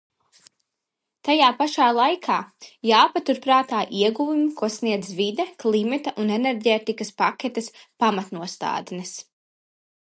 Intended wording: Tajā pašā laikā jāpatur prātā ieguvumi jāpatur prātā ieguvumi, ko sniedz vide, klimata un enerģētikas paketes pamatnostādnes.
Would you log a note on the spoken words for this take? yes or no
yes